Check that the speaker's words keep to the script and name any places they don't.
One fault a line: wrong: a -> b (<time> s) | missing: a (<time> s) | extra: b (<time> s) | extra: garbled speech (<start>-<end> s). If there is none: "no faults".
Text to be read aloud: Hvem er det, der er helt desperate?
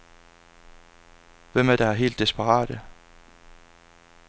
missing: det (1.8 s)